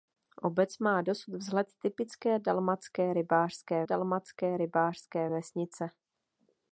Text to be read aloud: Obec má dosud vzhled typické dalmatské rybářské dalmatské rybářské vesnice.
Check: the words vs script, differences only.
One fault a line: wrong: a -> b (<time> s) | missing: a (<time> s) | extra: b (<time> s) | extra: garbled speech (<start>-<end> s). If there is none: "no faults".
no faults